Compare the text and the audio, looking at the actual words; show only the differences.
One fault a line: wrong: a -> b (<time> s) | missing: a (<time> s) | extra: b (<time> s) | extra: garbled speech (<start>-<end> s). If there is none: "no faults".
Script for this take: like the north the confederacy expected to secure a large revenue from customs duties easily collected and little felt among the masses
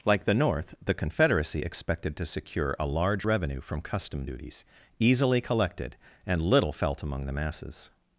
wrong: customs -> custom (3.8 s)